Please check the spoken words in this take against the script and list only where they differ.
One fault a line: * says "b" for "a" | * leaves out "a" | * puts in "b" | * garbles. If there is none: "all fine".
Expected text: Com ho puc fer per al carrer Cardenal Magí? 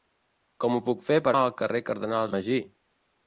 all fine